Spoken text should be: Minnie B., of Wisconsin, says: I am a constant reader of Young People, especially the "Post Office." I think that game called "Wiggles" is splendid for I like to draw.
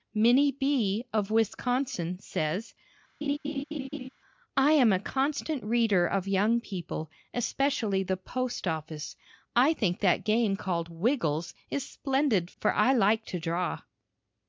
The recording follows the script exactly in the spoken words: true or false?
true